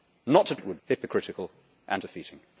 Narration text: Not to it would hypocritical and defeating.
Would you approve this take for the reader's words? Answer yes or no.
yes